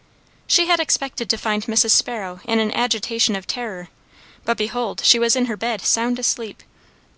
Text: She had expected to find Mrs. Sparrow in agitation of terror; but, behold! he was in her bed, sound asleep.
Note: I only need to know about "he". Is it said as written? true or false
false